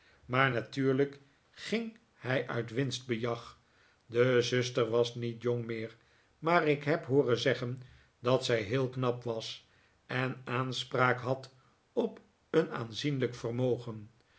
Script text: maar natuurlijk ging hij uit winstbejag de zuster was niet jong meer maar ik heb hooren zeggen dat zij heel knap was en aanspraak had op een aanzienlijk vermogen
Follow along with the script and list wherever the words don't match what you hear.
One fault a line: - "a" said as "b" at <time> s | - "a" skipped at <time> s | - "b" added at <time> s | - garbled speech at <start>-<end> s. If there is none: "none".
none